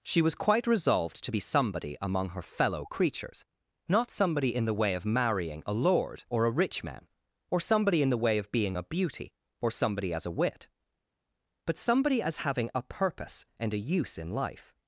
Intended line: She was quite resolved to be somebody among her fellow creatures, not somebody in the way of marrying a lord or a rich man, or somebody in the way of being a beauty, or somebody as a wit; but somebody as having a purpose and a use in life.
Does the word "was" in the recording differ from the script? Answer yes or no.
no